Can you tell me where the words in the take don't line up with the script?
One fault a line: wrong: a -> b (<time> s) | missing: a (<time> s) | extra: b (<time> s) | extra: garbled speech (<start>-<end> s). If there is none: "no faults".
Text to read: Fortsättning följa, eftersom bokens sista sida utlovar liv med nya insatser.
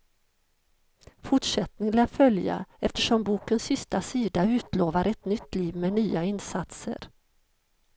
extra: lär (1.9 s)
extra: ett nytt (5.1 s)